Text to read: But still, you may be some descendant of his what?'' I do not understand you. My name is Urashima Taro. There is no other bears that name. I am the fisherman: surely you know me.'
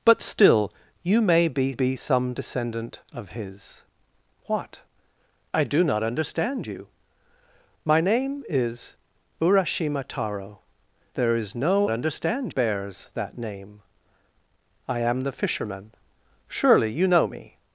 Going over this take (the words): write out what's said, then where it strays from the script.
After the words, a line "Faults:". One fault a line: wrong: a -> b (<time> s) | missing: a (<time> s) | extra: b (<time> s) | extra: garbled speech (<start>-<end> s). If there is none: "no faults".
But still, you may be be some descendant of his what?'' I do not understand you. My name is Urashima Taro. There is no understand bears that name. I am the fisherman: surely you know me.'
Faults:
extra: be (1.7 s)
wrong: other -> understand (11.9 s)